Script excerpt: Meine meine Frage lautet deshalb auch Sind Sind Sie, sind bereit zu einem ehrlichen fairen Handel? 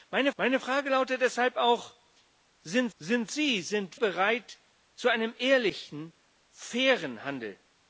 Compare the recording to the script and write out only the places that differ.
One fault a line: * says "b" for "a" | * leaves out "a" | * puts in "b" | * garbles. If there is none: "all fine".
all fine